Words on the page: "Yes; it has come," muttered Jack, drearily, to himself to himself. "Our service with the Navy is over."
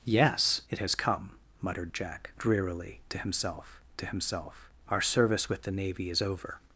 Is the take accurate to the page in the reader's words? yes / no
yes